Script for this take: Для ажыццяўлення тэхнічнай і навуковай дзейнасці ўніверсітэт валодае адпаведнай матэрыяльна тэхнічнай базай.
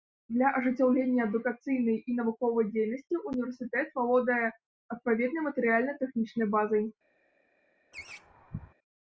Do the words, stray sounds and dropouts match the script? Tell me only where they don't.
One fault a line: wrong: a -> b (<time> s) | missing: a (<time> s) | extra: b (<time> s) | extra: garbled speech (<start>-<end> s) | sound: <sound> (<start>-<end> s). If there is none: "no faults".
wrong: тэхнічнай -> адукацыйнай (1.3 s)
sound: laugh (7.9-8.7 s)